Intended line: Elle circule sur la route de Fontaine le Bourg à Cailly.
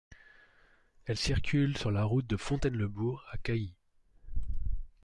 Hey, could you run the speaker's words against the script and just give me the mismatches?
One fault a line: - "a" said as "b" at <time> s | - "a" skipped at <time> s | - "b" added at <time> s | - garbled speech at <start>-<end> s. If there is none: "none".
none